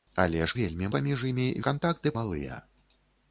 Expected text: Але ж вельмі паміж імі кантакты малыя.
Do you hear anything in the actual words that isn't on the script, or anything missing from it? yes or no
no